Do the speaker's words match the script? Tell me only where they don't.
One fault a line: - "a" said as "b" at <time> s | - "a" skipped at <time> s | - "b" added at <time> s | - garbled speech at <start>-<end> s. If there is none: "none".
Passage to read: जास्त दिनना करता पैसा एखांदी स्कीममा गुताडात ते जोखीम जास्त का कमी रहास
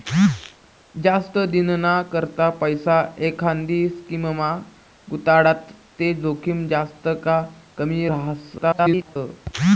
- garbled speech at 8.6-9.2 s